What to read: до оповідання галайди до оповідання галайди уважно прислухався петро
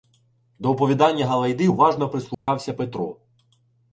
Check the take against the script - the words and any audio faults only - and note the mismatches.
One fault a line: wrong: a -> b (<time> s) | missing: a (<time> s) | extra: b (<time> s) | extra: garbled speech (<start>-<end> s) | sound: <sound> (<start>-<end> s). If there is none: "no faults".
missing: до оповідання галайди (1.7 s)
sound: dropout (2.3-2.5 s)